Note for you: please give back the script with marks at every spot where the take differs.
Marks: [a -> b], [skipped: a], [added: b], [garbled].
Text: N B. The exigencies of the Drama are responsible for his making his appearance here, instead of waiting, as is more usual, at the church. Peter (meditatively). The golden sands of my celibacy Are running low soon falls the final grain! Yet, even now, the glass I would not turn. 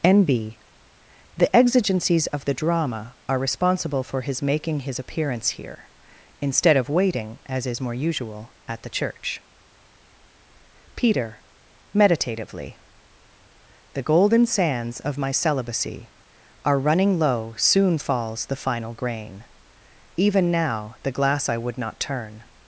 N B. The exigencies of the Drama are responsible for his making his appearance here, instead of waiting, as is more usual, at the church. Peter (meditatively). The golden sands of my celibacy Are running low soon falls the final grain! [skipped: Yet,] even now, the glass I would not turn.